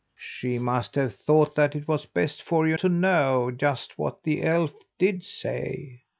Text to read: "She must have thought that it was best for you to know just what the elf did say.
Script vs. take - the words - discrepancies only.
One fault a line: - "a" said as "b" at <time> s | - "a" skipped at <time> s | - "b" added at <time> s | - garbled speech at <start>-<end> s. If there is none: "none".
none